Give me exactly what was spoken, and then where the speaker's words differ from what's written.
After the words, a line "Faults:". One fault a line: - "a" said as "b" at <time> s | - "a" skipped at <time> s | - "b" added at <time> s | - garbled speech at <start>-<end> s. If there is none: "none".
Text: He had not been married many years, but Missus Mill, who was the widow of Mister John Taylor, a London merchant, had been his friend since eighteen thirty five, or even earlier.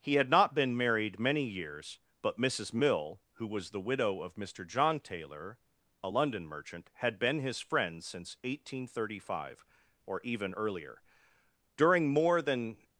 He had not been married many years, but Missus Mill, who was the widow of Mister John Taylor, a London merchant, had been his friend since eighteen thirty five, or even earlier. During more than
Faults:
- "During more than" added at 11.8 s